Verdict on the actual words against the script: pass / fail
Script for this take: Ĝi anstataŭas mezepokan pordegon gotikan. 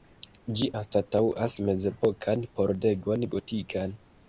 pass